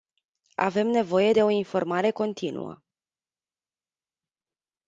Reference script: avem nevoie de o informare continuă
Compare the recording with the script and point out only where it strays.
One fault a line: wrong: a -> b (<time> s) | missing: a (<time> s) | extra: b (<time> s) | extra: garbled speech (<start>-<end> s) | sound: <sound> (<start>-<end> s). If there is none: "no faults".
no faults